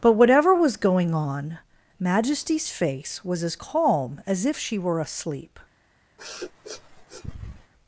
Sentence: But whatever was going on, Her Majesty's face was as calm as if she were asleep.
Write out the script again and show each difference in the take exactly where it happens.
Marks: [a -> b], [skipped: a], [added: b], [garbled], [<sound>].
But whatever was going on, [skipped: Her] Majesty's face was as calm as if she were asleep. [sniff]